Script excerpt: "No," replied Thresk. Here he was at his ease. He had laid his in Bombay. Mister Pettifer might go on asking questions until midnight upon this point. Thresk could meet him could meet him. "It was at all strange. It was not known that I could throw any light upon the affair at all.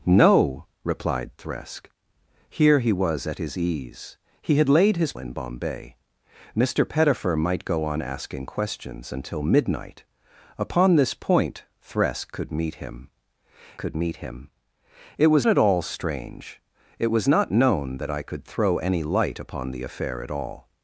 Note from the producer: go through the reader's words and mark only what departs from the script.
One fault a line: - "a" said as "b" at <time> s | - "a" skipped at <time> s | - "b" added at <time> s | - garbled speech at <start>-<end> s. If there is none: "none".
none